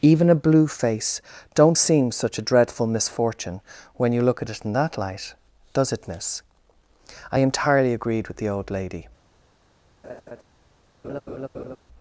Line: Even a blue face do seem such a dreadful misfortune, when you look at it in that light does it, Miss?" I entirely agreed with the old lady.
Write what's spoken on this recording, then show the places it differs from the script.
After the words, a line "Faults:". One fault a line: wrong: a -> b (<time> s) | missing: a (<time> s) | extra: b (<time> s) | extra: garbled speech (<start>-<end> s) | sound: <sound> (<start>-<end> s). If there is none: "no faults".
Even a blue face don't seem such a dreadful misfortune, when you look at it in that light does it, Miss?" I entirely agreed with the old lady.
Faults:
wrong: do -> don't (1.5 s)
sound: laugh (10.0-10.4 s)
sound: laugh (11.0-11.8 s)